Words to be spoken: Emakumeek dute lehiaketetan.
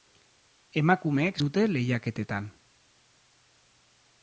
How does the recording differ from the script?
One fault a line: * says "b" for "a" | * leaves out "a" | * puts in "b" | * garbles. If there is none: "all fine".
all fine